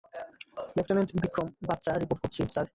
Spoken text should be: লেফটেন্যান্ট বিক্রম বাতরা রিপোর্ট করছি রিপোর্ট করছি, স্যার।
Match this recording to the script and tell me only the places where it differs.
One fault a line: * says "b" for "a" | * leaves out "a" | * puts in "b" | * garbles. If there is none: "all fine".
* leaves out "রিপোর্ট করছি"